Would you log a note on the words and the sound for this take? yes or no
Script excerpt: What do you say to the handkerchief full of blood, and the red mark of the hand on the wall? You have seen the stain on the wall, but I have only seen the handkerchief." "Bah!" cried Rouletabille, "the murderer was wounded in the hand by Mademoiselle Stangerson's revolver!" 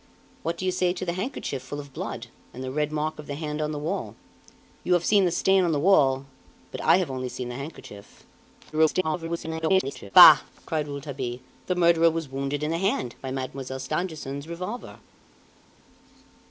yes